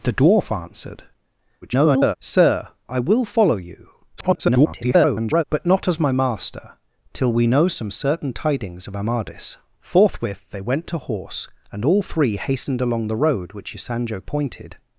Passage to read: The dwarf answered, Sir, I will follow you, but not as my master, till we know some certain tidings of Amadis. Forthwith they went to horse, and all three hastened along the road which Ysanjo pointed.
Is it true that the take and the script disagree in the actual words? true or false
true